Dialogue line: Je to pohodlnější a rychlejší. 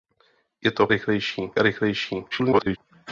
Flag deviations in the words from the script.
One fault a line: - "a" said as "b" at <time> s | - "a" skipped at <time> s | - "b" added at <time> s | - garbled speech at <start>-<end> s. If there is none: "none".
- "pohodlnější" said as "rychlejší" at 0.9 s
- garbled speech at 2.3-2.8 s